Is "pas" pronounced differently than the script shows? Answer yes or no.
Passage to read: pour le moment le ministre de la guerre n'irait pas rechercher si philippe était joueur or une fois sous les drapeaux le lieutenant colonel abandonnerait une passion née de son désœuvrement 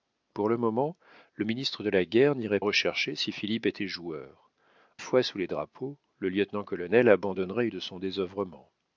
yes